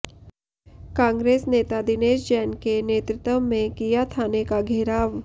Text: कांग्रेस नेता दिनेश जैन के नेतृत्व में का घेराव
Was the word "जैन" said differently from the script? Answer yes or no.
no